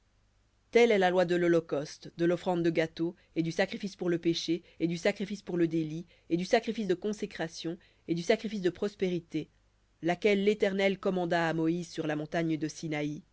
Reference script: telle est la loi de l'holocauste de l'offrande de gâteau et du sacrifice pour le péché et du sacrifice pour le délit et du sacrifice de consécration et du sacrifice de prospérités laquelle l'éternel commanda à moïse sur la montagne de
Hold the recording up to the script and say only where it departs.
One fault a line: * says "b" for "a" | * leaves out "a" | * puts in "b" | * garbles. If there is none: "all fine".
all fine